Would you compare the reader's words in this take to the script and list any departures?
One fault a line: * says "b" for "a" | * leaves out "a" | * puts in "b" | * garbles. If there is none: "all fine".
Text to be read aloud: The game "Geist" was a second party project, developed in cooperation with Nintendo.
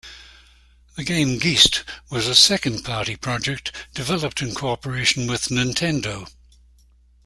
all fine